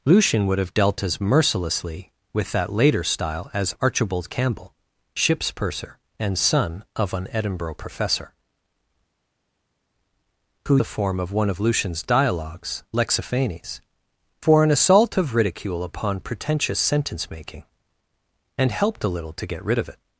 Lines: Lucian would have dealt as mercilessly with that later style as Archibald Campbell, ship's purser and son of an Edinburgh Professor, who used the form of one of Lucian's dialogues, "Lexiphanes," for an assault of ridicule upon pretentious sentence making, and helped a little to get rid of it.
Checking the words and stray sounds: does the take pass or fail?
fail